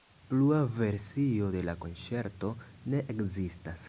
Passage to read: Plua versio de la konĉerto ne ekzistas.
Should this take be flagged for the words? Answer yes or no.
no